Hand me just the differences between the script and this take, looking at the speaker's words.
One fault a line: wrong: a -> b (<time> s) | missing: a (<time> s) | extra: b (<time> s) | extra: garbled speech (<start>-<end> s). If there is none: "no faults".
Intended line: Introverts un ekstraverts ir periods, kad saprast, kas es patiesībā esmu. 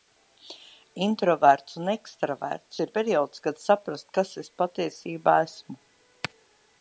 no faults